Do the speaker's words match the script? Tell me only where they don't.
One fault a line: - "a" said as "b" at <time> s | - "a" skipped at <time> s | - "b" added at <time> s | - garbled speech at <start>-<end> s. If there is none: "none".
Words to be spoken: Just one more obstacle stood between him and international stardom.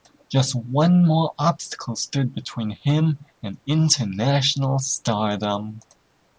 none